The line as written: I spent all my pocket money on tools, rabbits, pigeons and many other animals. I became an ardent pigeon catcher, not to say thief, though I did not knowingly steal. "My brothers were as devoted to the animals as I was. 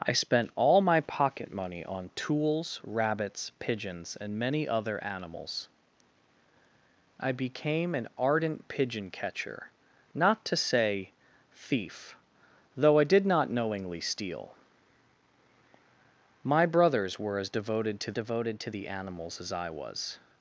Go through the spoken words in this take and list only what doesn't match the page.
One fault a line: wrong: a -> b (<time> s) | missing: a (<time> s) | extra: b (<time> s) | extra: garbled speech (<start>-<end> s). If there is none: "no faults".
extra: devoted to (18.1 s)